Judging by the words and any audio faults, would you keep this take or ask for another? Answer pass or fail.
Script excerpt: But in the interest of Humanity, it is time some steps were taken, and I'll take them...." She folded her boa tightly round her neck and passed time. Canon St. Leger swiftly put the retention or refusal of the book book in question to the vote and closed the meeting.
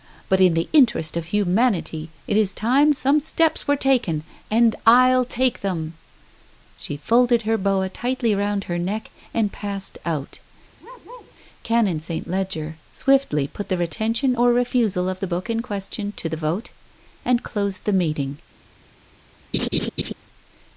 fail